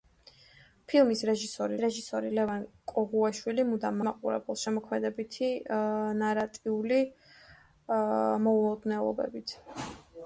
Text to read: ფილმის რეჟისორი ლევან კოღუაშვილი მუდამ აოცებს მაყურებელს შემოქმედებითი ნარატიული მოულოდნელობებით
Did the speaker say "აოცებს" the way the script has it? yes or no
no